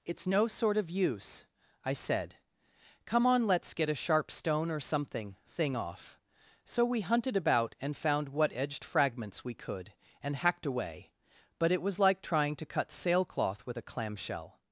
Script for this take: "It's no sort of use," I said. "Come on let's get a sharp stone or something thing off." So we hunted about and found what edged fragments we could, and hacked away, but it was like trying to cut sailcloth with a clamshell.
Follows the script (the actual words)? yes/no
yes